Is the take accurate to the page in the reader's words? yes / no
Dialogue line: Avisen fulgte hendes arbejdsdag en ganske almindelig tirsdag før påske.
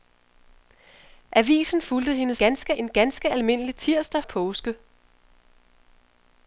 no